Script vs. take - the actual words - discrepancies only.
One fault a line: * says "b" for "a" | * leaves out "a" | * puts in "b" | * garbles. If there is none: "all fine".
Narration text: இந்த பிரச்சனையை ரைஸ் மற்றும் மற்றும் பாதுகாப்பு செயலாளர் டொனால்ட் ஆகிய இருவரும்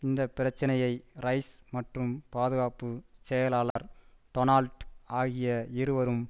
* leaves out "மற்றும்"